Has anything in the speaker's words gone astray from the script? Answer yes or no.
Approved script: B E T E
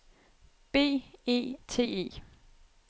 no